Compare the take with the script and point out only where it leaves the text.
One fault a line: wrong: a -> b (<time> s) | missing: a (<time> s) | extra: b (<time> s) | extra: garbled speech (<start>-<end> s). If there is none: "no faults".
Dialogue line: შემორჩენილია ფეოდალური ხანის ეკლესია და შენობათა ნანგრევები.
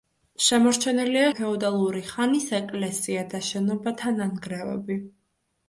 no faults